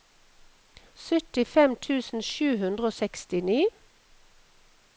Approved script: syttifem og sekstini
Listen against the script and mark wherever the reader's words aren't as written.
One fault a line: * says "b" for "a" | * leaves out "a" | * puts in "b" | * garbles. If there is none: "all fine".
* puts in "tusen sju hundre"